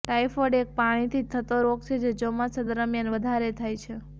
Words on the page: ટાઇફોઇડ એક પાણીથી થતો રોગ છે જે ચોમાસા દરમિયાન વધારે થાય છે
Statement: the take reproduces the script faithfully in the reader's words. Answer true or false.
true